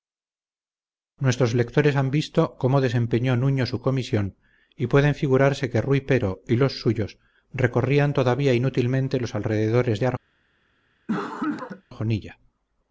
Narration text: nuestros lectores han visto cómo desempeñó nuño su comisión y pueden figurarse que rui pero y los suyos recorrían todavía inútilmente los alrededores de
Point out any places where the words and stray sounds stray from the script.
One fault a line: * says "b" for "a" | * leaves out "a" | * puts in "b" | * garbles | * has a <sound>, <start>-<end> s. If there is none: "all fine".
* has a cough, 11.1-11.8 s